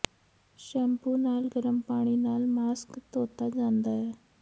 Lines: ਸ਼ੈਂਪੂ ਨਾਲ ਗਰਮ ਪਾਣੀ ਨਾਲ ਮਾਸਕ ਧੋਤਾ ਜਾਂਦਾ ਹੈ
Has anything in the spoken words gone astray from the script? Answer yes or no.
no